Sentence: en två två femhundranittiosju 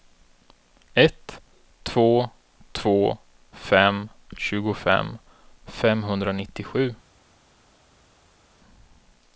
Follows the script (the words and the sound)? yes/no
no